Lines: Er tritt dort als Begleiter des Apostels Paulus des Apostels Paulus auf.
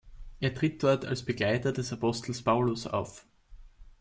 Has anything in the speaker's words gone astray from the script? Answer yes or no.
yes